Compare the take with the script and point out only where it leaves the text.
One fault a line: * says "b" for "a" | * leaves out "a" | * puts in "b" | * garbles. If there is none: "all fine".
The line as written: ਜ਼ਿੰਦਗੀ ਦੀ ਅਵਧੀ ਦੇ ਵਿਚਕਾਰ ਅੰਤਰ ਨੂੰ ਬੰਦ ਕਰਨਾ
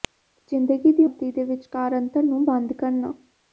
all fine